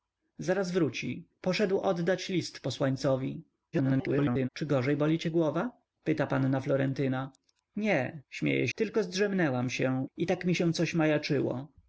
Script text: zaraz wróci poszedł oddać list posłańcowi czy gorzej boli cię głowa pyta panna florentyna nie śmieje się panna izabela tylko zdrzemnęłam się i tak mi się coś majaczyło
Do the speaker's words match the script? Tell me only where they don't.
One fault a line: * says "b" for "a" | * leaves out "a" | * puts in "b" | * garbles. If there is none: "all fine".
* garbles
* leaves out "się panna izabela"